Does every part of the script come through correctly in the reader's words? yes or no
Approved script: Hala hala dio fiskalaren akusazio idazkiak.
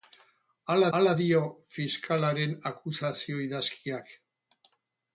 yes